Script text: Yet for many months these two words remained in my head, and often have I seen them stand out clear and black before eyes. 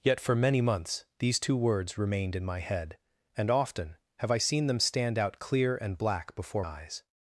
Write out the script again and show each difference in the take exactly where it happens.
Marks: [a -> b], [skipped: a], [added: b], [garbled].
Yet for many months these two words remained in my head, and often have I seen them stand out clear and black before eyes.